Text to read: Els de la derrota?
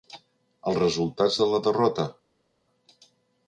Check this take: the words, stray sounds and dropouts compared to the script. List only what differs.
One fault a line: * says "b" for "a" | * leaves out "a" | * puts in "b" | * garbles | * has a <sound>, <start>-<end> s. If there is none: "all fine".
* puts in "resultats"